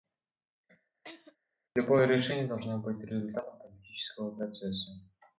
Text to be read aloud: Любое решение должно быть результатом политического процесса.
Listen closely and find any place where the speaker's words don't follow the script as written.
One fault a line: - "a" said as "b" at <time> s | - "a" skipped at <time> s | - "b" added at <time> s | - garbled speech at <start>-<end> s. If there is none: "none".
none